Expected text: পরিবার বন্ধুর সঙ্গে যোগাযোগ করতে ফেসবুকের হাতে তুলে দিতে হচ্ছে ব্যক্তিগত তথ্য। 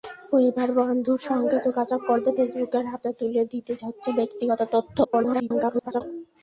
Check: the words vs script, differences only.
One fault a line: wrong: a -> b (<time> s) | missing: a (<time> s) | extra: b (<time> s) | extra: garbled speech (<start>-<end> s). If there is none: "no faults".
extra: garbled speech (5.0-6.0 s)